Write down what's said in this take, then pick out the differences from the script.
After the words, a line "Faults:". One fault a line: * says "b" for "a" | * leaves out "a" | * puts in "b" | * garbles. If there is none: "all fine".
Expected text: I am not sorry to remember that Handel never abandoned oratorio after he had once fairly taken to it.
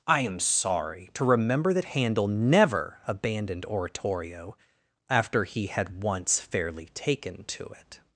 I am sorry to remember that Handel never abandoned oratorio after he had once fairly taken to it.
Faults:
* leaves out "not"